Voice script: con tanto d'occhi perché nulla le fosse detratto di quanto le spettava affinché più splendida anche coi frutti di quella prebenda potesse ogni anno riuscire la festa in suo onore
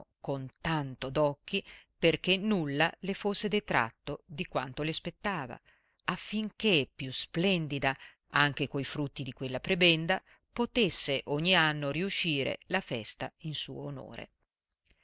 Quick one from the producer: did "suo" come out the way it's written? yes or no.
yes